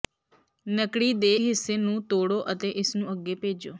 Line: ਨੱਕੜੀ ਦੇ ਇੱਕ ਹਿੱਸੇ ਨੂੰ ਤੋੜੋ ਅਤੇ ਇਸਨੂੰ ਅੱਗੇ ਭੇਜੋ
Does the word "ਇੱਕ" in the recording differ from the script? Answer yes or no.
yes